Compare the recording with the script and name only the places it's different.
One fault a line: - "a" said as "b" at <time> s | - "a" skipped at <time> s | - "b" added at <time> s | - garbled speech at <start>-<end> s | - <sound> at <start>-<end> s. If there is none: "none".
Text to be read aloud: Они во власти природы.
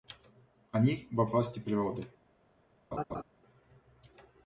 - laugh at 2.9-3.2 s